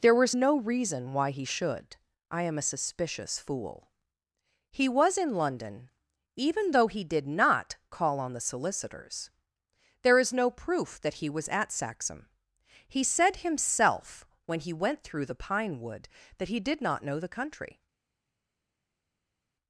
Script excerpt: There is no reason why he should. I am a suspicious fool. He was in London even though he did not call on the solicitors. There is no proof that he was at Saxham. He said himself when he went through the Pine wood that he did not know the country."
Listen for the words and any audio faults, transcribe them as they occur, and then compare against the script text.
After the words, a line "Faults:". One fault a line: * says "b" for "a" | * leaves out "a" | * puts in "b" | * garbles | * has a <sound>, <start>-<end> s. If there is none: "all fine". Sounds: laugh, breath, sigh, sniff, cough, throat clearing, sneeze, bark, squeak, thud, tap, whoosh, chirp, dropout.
There was no reason why he should. I am a suspicious fool. He was in London even though he did not call on the solicitors. There is no proof that he was at Saxham. He said himself when he went through the Pine wood that he did not know the country."
Faults:
* says "was" for "is"